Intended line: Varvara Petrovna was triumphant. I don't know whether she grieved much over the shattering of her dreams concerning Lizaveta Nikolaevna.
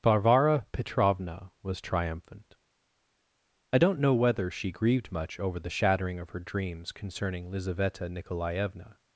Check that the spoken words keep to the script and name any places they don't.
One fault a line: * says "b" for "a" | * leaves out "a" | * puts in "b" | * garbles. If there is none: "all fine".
all fine